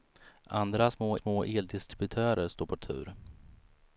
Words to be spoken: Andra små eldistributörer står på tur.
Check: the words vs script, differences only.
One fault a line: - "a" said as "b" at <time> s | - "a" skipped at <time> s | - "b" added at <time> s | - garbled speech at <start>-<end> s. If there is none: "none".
- "små" added at 1.1 s